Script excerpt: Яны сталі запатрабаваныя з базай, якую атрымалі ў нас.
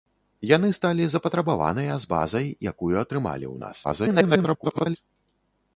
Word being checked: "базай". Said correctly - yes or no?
yes